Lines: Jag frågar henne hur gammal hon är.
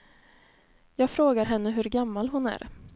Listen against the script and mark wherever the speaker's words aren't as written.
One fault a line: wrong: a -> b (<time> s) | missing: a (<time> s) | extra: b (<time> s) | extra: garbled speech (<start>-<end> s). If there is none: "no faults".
no faults